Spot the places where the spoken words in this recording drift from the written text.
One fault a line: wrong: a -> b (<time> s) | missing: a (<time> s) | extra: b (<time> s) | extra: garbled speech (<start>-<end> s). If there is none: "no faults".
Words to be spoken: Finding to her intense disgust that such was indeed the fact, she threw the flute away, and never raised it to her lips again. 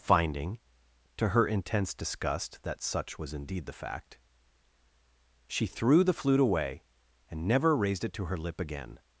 wrong: lips -> lip (8.3 s)